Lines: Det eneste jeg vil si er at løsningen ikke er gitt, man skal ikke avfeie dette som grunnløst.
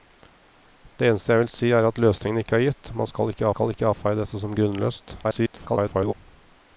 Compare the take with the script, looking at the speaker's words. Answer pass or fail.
fail